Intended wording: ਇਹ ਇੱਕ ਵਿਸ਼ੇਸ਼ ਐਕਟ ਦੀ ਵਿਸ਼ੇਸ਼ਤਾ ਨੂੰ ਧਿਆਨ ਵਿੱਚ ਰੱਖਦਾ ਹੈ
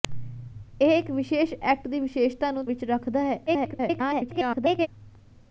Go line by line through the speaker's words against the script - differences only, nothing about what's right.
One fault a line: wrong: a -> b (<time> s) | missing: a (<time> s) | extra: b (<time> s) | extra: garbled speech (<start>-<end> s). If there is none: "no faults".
missing: ਧਿਆਨ (2.6 s)
extra: garbled speech (3.5-4.9 s)